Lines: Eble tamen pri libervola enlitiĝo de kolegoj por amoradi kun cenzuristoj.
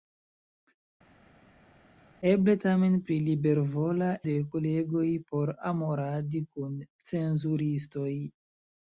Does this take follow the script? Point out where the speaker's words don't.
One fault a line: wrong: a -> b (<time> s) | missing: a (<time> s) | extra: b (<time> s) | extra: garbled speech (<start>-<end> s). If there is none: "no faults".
missing: enlitiĝo (4.1 s)